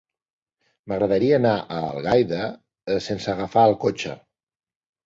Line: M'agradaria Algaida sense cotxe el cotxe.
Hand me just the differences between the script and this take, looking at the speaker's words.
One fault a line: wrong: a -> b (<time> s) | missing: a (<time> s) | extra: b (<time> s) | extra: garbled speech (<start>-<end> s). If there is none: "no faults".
extra: anar a (1.4 s)
wrong: cotxe -> agafar (3.4 s)